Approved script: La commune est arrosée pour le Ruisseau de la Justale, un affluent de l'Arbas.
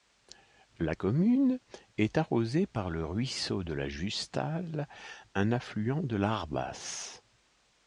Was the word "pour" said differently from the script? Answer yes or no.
yes